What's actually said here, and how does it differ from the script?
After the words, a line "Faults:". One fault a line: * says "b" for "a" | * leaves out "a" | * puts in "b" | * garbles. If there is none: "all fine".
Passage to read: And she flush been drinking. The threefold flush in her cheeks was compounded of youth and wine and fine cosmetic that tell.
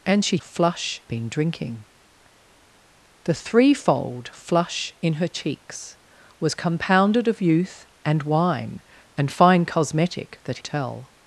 And she flush been drinking. The threefold flush in her cheeks was compounded of youth and wine and fine cosmetic that tell.
Faults:
all fine